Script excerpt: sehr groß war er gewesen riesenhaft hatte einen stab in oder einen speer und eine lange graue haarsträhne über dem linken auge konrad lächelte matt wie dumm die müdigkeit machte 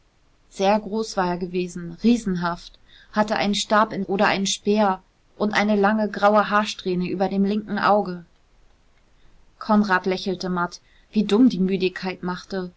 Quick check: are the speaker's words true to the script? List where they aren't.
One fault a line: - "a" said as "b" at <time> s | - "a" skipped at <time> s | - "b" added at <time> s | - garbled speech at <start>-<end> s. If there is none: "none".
none